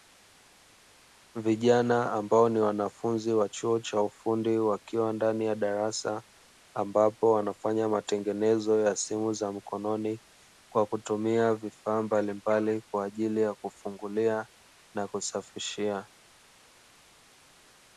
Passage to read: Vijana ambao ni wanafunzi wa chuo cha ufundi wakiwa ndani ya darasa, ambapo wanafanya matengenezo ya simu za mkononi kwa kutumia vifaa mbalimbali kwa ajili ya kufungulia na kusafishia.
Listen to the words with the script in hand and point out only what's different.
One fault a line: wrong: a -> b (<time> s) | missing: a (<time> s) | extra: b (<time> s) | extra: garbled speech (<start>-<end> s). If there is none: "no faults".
no faults